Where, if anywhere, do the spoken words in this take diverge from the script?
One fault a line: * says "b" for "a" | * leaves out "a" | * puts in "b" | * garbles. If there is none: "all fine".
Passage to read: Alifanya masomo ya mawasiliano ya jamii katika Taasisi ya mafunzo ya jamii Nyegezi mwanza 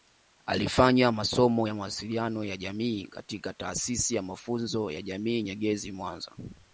all fine